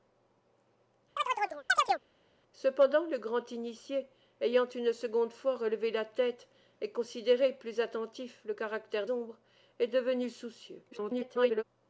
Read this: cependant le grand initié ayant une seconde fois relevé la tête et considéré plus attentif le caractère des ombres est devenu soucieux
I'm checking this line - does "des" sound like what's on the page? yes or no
no